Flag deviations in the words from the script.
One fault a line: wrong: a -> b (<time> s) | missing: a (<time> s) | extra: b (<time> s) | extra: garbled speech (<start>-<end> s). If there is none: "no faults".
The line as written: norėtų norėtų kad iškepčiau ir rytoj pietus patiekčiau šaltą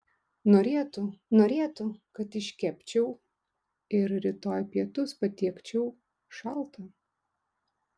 no faults